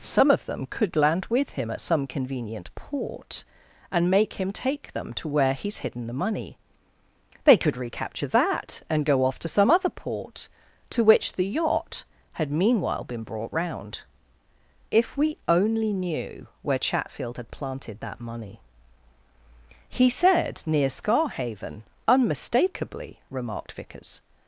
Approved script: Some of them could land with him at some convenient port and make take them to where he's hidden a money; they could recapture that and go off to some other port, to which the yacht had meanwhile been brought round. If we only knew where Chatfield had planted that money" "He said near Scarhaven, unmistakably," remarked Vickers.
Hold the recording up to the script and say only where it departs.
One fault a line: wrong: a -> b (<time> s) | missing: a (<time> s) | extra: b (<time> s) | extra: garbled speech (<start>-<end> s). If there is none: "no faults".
extra: him (4.3 s)
wrong: a -> the (6.1 s)